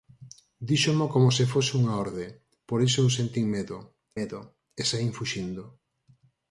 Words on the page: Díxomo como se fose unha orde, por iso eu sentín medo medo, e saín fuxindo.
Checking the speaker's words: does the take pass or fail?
pass